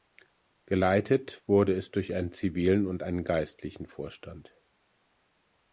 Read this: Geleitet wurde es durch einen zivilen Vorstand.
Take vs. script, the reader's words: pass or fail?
fail